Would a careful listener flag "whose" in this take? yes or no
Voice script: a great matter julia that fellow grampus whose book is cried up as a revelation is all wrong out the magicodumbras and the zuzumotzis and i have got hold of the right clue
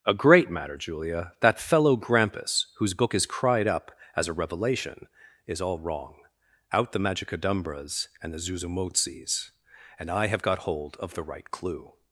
no